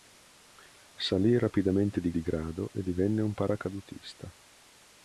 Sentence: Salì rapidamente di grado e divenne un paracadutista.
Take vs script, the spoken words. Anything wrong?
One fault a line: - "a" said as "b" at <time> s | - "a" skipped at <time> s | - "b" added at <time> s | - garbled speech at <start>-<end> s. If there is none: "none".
- "di" added at 2.1 s